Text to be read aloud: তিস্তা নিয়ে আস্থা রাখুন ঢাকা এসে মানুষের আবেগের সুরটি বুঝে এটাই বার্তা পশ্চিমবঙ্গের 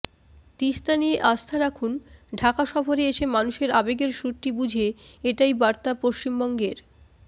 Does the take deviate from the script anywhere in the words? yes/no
yes